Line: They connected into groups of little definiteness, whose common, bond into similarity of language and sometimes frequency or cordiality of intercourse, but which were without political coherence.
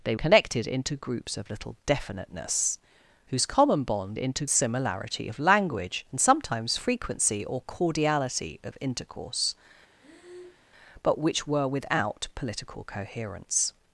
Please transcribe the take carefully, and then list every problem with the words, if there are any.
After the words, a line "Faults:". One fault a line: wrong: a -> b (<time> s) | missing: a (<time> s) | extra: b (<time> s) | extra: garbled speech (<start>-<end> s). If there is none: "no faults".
They connected into groups of little definiteness, whose common, bond into similarity of language and sometimes frequency or cordiality of intercourse, but which were without political coherence.
Faults:
no faults